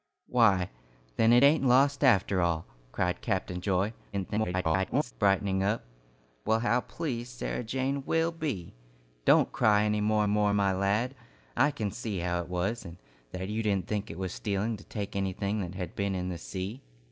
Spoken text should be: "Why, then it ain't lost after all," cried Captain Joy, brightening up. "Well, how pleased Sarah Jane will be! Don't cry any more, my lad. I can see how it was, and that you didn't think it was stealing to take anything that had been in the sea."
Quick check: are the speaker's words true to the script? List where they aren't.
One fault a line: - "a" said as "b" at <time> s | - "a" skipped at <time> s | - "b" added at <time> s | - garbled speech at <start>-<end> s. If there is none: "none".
- garbled speech at 4.1-5.1 s
- "more" added at 10.3 s